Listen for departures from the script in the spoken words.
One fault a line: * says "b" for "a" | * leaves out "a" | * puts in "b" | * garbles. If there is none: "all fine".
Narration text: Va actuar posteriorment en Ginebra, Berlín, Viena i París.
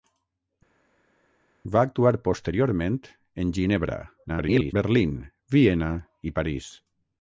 * garbles